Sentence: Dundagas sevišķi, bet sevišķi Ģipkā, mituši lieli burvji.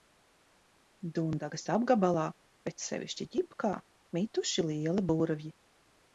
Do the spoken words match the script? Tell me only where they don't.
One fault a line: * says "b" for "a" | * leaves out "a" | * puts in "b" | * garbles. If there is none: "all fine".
* says "apgabalā" for "sevišķi"